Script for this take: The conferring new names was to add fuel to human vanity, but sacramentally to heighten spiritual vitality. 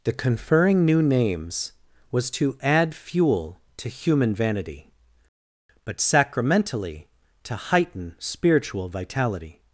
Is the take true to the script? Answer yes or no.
yes